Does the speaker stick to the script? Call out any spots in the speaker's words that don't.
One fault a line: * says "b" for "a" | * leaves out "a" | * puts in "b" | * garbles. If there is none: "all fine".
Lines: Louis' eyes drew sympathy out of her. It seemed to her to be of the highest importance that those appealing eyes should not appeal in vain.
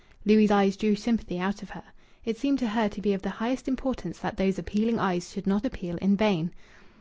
all fine